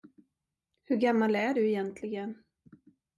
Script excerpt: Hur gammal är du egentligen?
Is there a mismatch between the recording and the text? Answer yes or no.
no